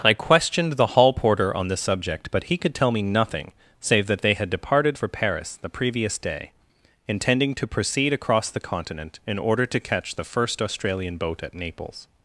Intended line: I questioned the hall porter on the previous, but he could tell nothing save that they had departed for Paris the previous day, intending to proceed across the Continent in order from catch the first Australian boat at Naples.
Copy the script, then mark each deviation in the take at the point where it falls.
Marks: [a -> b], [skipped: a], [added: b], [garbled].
I questioned the hall porter on the [previous, -> subject] but he could tell [added: me] nothing save that they had departed for Paris the previous day, intending to proceed across the Continent in order [from -> to] catch the first Australian boat at Naples.